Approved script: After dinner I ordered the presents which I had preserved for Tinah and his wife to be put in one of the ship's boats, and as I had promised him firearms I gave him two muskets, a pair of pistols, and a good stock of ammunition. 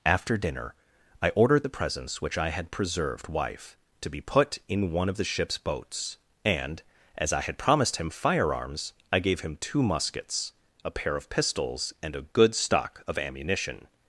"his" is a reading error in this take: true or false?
true